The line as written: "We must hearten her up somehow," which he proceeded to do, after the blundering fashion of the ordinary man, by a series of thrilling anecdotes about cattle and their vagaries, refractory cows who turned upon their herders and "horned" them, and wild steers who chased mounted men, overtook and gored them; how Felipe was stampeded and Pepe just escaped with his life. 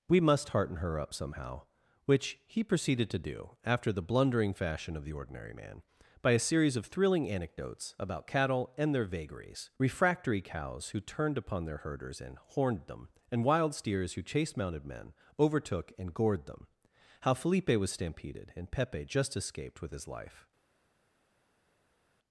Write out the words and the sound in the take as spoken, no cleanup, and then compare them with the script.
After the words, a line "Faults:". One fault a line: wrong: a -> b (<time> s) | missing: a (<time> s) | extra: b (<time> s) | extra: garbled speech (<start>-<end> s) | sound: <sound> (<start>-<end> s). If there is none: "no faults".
"We must hearten her up somehow," which he proceeded to do, after the blundering fashion of the ordinary man, by a series of thrilling anecdotes about cattle and their vagaries, refractory cows who turned upon their herders and "horned" them, and wild steers who chased mounted men, overtook and gored them; how Felipe was stampeded and Pepe just escaped with his life.
Faults:
no faults